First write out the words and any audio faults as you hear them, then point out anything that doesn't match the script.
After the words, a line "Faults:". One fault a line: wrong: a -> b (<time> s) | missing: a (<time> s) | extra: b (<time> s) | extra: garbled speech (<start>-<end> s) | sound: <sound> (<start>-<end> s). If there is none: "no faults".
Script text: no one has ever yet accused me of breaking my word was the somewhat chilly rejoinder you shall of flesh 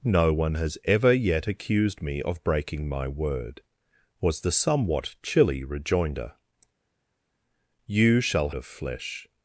no one has ever yet accused me of breaking my word was the somewhat chilly rejoinder you shall of flesh
Faults:
no faults